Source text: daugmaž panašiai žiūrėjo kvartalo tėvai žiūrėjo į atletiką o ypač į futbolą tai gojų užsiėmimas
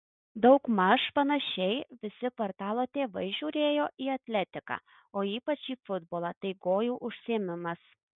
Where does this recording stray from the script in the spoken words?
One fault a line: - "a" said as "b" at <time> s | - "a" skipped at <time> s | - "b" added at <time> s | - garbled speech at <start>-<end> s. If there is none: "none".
- "žiūrėjo" said as "visi" at 2.0 s